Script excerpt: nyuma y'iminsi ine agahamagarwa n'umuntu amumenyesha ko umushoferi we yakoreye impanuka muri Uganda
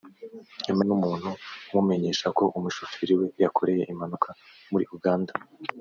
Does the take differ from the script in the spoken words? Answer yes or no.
yes